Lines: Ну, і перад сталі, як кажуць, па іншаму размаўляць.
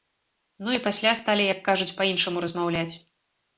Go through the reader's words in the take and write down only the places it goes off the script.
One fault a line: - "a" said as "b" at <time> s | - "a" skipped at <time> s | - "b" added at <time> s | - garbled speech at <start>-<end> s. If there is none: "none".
- "перад" said as "пасля" at 0.9 s